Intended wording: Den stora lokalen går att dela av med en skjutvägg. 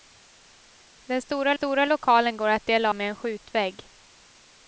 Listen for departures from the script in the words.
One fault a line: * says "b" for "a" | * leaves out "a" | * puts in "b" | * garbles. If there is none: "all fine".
* puts in "stora"
* leaves out "av"